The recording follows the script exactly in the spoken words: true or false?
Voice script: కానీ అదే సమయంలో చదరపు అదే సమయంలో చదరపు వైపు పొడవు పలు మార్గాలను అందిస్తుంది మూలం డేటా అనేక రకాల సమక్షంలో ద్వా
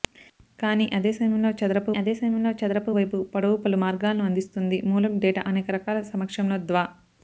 true